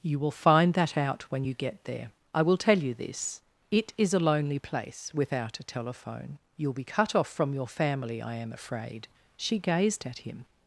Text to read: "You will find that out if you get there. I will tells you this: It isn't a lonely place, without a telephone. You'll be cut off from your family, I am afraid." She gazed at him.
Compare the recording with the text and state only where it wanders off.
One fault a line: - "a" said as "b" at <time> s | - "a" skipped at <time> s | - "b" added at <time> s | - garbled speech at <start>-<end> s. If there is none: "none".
- "if" said as "when" at 1.3 s
- "tells" said as "tell" at 2.6 s
- "isn't" said as "is" at 4.0 s